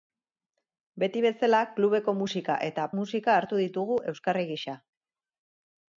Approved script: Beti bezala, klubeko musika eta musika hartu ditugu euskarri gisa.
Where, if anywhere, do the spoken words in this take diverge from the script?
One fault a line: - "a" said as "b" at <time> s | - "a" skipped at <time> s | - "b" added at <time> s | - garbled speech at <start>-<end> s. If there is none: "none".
none